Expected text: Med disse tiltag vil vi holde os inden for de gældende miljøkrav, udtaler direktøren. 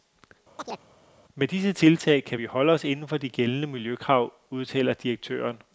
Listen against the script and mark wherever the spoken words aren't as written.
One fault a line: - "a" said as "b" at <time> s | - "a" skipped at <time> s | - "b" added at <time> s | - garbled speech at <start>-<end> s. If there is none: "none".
- "vil" said as "kan" at 2.2 s